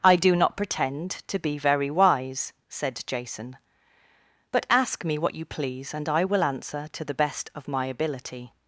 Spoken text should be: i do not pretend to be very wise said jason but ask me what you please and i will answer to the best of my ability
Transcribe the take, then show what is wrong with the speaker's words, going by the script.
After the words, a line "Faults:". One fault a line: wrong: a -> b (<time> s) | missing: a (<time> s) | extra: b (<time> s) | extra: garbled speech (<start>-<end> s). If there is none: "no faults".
i do not pretend to be very wise said jason but ask me what you please and i will answer to the best of my ability
Faults:
no faults